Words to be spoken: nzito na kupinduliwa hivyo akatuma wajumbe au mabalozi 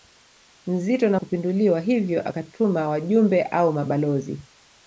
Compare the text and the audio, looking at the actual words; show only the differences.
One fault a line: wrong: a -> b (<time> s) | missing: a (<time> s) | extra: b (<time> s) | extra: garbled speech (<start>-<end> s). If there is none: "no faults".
no faults